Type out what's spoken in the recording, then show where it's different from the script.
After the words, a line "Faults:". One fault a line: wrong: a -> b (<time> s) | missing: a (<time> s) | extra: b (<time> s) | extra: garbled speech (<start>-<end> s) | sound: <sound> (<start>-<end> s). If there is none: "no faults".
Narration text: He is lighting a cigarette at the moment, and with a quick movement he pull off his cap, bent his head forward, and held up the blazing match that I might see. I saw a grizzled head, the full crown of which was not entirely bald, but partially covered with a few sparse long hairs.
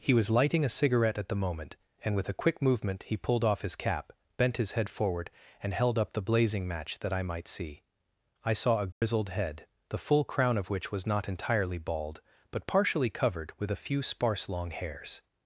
He was lighting a cigarette at the moment, and with a quick movement he pulled off his cap, bent his head forward, and held up the blazing match that I might see. I saw a grizzled head, the full crown of which was not entirely bald, but partially covered with a few sparse long hairs.
Faults:
wrong: is -> was (0.1 s)
wrong: pull -> pulled (3.2 s)
sound: dropout (8.9-9.0 s)